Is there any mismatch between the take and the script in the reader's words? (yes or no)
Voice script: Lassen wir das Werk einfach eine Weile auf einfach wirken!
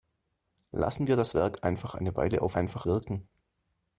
no